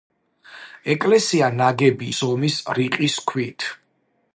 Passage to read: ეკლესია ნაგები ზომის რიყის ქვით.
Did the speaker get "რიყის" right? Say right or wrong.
right